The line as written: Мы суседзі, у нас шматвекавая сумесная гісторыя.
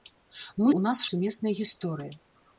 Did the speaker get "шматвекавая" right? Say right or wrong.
wrong